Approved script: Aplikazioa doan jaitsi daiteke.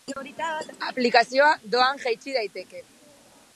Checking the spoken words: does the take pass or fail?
pass